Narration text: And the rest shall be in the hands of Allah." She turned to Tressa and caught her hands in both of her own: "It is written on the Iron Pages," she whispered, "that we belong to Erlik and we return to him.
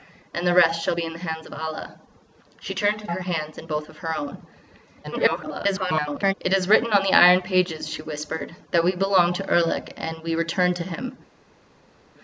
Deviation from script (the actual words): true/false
true